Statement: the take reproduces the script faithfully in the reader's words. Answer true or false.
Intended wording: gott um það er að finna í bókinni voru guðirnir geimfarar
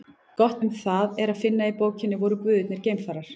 true